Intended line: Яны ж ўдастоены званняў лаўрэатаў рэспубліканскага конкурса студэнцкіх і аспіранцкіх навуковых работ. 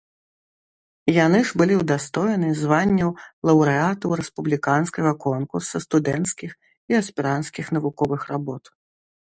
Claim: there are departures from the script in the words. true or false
true